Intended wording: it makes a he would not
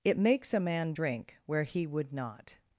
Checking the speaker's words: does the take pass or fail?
fail